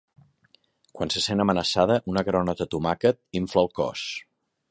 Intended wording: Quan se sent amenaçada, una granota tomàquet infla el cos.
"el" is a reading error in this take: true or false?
false